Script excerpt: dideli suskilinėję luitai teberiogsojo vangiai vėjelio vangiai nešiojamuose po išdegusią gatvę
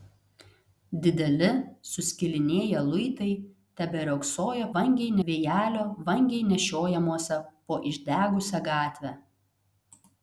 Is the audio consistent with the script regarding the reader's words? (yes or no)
yes